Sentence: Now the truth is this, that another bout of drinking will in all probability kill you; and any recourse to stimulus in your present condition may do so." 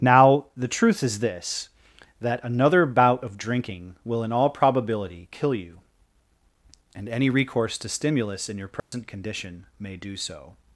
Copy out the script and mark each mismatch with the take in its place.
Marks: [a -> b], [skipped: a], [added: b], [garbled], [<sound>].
Now the truth is this, that another bout of drinking will in all probability kill you; and any recourse to stimulus in your present [dropout] condition may do so."